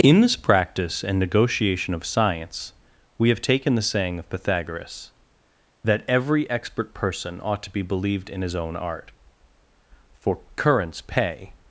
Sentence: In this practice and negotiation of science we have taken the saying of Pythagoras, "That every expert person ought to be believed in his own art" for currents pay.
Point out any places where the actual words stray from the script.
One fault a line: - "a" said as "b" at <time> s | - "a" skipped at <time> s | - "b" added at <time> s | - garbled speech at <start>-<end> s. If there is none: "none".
none